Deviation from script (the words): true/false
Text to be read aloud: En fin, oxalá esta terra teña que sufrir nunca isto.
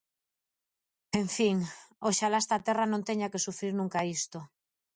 true